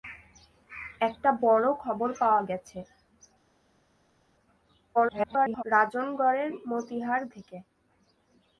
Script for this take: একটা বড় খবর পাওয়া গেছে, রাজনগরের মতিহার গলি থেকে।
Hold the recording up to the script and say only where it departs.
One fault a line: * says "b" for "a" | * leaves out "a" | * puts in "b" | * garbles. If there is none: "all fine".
* garbles
* leaves out "গলি"